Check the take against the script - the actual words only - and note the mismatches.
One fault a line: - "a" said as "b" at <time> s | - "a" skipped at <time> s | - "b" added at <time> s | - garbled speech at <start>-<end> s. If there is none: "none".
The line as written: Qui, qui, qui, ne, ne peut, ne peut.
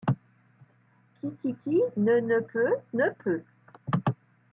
none